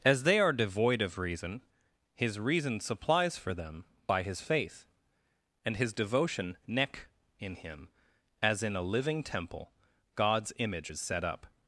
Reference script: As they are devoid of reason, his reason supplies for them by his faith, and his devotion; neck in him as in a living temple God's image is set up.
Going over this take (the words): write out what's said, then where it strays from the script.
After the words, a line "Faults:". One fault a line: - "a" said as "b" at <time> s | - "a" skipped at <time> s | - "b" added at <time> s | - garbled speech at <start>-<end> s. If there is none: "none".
As they are devoid of reason, his reason supplies for them by his faith, and his devotion; neck in him as in a living temple God's image is set up.
Faults:
none